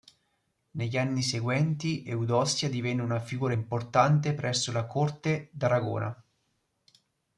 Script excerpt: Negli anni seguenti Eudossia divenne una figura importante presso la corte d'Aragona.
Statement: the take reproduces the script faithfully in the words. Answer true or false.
true